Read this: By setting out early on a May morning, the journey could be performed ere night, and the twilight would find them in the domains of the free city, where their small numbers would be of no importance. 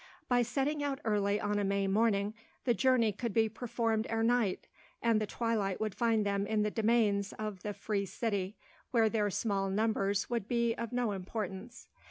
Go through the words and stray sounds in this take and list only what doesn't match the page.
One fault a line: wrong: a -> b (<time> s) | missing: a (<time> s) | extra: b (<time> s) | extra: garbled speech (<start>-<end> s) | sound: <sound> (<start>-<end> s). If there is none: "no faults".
no faults